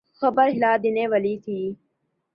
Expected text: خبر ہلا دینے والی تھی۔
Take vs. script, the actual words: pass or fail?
pass